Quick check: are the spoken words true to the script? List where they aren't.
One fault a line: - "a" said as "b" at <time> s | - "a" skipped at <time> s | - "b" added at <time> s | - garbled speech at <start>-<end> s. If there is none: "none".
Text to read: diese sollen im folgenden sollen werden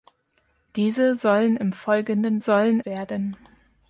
none